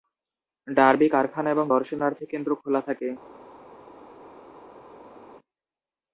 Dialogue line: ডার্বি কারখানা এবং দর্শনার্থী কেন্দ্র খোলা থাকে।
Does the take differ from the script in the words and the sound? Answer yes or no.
no